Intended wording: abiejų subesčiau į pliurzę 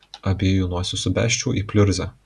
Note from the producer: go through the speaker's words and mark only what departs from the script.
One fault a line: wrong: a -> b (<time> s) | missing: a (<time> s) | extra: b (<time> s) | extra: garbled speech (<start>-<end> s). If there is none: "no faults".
extra: nosis (0.7 s)